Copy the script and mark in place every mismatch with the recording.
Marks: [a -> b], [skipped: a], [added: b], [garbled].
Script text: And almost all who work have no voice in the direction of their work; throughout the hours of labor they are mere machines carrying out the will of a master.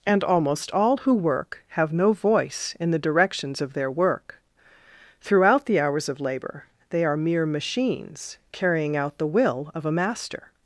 And almost all who work have no voice in the [direction -> directions] of their work; throughout the hours of labor they are mere machines carrying out the will of a master.